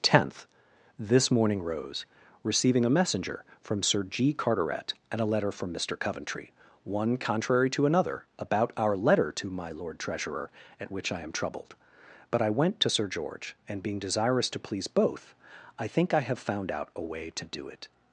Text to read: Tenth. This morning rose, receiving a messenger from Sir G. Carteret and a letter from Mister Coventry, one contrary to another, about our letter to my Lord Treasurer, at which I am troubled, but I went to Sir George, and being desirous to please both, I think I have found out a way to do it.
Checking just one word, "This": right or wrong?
right